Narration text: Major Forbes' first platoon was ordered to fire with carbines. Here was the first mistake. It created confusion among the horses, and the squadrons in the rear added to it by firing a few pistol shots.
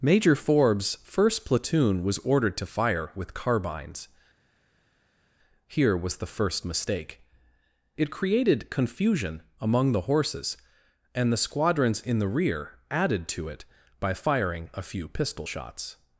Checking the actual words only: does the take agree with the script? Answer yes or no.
yes